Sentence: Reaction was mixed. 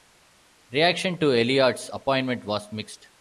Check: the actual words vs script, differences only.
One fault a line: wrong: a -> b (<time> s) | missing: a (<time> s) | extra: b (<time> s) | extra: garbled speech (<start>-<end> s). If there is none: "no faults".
extra: to Elliott's appointment (1.2 s)